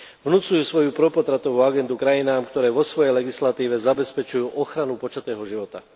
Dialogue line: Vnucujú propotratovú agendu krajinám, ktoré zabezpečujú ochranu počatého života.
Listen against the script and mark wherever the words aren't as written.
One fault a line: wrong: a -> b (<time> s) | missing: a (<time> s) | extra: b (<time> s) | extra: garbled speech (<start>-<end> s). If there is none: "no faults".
extra: svoju (0.6 s)
extra: vo svojej legislatíve (2.7 s)